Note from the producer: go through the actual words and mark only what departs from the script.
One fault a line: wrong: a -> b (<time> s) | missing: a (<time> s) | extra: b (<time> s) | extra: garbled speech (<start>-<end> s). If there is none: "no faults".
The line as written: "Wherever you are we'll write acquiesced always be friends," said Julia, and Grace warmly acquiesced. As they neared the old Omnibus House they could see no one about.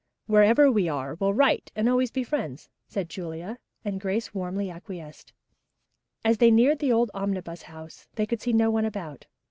wrong: you -> we (0.7 s)
wrong: acquiesced -> and (1.8 s)